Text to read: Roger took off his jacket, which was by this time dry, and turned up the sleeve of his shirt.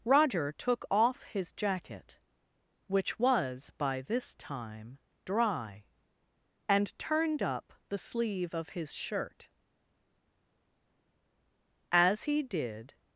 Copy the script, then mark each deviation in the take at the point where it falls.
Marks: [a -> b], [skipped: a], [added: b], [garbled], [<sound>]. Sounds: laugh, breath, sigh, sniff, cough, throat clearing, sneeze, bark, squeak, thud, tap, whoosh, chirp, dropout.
Roger took off his jacket, which was by this time dry, and turned up the sleeve of his shirt. [added: As he did]